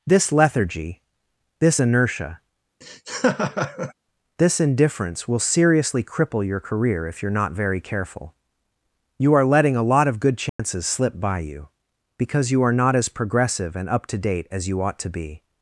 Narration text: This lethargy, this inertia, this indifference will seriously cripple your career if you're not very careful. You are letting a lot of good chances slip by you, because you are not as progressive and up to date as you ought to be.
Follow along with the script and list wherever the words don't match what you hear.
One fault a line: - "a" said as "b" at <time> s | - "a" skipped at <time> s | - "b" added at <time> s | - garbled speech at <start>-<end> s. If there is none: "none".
none